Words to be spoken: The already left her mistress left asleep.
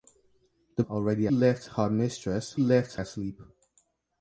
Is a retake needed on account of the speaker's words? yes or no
no